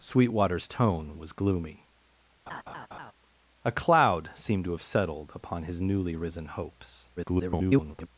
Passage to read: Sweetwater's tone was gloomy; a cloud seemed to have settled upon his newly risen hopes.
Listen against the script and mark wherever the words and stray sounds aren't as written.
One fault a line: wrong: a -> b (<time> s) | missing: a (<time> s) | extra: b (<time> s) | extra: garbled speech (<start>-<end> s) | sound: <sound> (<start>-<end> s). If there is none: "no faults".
sound: laugh (2.5-3.1 s)
extra: garbled speech (7.2-8.1 s)